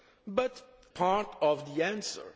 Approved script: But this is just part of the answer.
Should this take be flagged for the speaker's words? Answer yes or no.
yes